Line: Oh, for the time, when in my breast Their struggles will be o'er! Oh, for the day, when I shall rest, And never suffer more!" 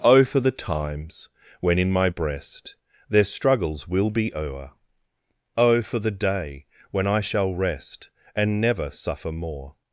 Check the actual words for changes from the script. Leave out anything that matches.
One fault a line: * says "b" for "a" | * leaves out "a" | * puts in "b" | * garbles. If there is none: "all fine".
* says "times" for "time"